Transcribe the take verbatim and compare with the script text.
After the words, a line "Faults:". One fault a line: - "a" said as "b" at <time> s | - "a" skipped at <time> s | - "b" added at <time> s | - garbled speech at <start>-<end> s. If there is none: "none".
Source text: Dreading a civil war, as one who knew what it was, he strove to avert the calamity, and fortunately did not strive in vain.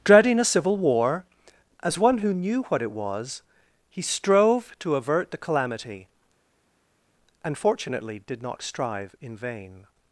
Dreading a civil war, as one who knew what it was, he strove to avert the calamity, and fortunately did not strive in vain.
Faults:
none